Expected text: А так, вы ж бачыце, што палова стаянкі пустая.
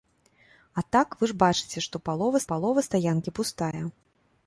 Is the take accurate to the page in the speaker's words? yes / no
no